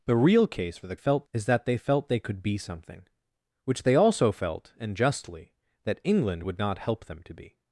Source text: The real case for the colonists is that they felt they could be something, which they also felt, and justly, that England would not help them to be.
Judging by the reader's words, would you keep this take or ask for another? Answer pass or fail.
fail